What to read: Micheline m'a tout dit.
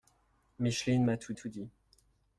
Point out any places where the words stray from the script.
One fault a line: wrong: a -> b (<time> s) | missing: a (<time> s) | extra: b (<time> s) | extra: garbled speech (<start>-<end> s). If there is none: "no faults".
extra: tout (1.3 s)